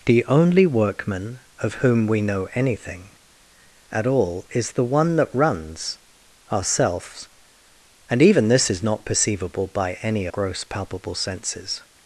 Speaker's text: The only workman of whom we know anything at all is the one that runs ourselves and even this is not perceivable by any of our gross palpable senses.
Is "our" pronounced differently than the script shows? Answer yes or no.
yes